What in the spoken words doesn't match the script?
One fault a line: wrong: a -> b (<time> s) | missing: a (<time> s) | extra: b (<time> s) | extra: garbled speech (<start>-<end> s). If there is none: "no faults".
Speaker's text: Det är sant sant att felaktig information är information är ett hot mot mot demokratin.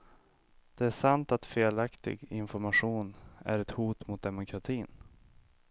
missing: sant (1.3 s)
missing: information är (3.6 s)
missing: mot (4.2 s)